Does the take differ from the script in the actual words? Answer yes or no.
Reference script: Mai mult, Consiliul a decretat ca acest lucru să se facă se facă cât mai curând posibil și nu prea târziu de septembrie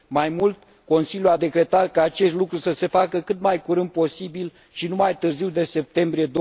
yes